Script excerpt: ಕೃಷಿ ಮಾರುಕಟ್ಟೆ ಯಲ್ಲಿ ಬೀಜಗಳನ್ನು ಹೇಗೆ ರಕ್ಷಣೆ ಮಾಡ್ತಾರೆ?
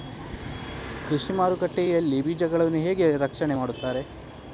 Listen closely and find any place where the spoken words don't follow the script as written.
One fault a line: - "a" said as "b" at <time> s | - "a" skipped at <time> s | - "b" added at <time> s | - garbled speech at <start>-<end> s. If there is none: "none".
none